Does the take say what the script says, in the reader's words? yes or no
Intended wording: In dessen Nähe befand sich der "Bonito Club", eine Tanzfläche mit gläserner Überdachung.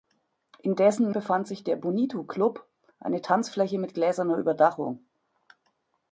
no